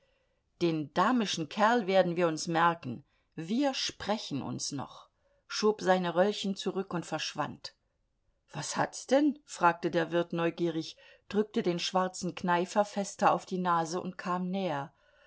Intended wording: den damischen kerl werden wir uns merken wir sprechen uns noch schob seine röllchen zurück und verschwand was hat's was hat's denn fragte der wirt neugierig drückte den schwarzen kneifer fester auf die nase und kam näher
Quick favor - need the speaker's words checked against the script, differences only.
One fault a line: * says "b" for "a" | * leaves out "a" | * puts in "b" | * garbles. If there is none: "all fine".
* leaves out "was hat's"